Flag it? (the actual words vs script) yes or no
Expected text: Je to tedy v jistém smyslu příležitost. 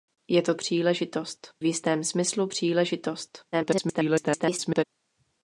yes